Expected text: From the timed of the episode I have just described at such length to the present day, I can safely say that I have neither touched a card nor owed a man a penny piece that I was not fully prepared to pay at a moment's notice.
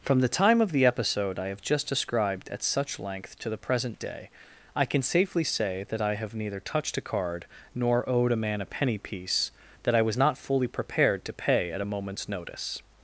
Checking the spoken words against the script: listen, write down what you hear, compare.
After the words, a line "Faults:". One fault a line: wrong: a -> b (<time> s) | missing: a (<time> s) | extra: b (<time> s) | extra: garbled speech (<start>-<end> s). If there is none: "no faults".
From the time of the episode I have just described at such length to the present day, I can safely say that I have neither touched a card nor owed a man a penny piece that I was not fully prepared to pay at a moment's notice.
Faults:
wrong: timed -> time (0.3 s)